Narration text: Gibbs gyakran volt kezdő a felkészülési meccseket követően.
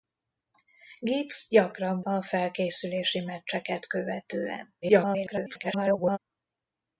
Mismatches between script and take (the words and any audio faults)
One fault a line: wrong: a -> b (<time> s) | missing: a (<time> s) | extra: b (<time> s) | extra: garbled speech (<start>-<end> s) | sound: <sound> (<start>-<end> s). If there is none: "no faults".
missing: volt kezdő (2.0 s)
extra: garbled speech (4.8-6.2 s)